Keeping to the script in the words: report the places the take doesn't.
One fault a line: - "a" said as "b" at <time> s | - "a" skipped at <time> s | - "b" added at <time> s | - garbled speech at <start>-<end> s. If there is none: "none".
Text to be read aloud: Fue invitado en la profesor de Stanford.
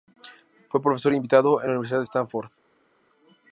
- "profesor" added at 0.8 s
- "profesor" said as "universidad" at 1.7 s